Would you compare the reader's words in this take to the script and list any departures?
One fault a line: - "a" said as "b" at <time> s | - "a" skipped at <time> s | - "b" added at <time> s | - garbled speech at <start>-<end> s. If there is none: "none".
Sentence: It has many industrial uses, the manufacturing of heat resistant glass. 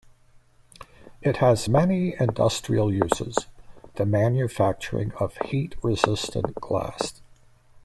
none